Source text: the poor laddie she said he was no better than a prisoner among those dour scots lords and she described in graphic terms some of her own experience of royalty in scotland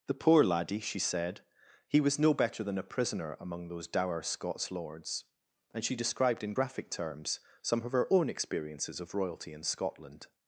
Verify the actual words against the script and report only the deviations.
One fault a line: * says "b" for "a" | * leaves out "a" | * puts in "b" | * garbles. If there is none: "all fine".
* says "experiences" for "experience"